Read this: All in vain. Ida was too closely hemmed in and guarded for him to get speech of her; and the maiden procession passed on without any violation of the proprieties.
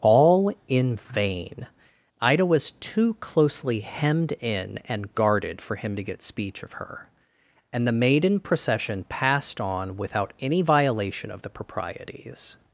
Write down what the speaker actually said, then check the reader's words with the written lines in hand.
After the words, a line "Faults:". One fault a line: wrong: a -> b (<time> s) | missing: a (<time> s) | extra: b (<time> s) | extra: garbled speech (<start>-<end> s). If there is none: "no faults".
All in vain. Ida was too closely hemmed in and guarded for him to get speech of her; and the maiden procession passed on without any violation of the proprieties.
Faults:
no faults